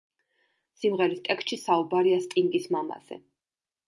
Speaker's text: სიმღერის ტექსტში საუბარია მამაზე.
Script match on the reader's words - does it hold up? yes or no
no